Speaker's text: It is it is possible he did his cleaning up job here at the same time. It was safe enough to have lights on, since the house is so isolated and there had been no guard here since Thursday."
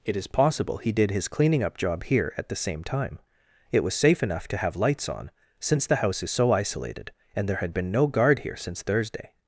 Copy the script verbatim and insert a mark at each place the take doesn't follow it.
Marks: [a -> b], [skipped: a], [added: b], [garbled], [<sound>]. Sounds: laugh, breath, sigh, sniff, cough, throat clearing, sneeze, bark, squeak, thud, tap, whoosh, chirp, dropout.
It is [skipped: it is] possible he did his cleaning up job here at the same time. It was safe enough to have lights on, since the house is so isolated and there had been no guard here since Thursday."